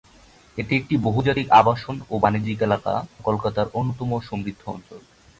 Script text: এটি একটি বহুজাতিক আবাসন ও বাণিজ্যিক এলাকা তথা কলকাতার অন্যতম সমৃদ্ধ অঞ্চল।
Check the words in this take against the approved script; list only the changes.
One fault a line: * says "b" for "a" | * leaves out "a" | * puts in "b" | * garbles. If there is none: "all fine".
* leaves out "তথা"